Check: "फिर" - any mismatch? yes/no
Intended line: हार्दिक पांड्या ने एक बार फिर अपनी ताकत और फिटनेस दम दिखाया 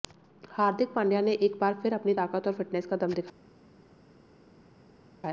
no